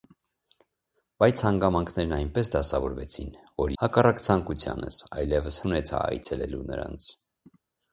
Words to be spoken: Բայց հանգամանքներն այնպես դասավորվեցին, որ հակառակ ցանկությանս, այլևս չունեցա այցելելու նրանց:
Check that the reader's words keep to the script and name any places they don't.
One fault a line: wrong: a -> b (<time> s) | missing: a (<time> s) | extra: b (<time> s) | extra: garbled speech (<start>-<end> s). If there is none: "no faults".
no faults